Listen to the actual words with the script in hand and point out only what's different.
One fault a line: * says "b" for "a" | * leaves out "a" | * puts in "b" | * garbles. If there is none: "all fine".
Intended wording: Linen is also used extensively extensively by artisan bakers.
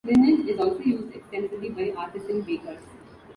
* leaves out "extensively"